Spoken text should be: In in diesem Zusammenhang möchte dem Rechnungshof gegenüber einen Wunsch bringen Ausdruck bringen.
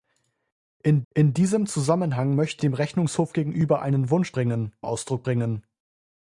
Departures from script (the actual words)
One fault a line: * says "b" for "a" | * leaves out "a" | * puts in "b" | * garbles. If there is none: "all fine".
all fine